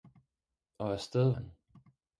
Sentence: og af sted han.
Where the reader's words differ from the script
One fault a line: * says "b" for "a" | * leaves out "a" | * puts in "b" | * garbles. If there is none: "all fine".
all fine